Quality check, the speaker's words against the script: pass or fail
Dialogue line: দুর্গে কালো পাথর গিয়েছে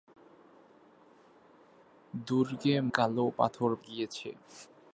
pass